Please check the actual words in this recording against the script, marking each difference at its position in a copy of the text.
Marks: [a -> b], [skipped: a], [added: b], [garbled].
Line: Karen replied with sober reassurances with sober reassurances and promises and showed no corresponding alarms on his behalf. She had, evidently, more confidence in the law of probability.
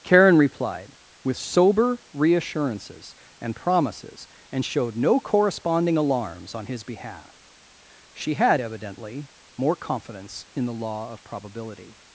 Karen replied with sober reassurances [skipped: with sober reassurances] and promises and showed no corresponding alarms on his behalf. She had, evidently, more confidence in the law of probability.